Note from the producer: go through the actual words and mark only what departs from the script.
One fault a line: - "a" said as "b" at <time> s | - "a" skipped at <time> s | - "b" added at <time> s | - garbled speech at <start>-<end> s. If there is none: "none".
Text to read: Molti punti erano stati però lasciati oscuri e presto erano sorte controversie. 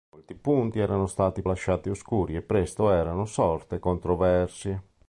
- "però" skipped at 1.4 s